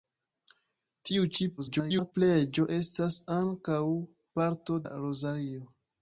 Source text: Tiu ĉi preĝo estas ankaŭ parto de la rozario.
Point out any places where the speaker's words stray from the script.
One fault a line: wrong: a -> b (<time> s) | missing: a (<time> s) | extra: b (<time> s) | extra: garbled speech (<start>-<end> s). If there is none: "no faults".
extra: garbled speech (1.6-2.1 s)
missing: de (4.8 s)